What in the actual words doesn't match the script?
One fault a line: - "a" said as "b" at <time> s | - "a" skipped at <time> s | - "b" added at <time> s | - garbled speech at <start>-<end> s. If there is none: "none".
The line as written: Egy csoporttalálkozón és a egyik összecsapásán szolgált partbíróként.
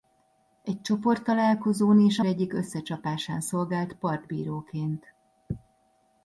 none